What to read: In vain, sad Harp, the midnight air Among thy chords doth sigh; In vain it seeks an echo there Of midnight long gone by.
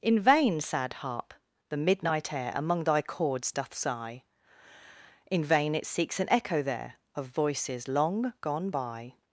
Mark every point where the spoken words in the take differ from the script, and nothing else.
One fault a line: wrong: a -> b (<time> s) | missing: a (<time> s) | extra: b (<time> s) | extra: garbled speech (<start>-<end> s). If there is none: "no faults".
wrong: midnight -> voices (7.3 s)